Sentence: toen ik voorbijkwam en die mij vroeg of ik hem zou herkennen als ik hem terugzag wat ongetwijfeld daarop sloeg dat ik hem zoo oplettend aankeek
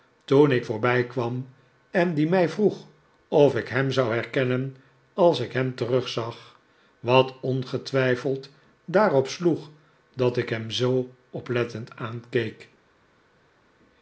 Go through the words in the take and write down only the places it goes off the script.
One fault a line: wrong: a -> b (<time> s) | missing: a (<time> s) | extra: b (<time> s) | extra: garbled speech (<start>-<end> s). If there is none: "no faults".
no faults